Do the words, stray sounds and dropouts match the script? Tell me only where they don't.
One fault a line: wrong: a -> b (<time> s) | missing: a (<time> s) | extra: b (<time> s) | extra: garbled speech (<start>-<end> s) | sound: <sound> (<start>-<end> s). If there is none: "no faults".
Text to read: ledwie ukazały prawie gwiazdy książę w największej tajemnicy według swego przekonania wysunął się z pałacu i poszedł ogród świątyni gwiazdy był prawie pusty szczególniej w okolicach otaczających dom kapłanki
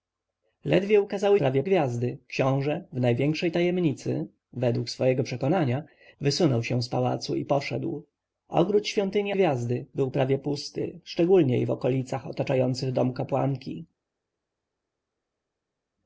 no faults